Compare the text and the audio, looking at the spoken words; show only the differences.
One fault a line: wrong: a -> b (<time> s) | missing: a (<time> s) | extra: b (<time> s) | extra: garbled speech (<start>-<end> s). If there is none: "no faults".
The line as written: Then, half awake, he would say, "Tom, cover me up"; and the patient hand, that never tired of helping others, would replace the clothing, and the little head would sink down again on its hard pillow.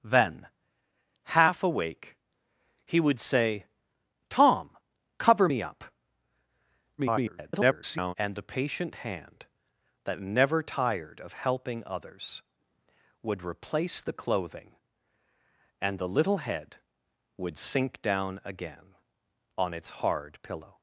extra: garbled speech (7.0-8.1 s)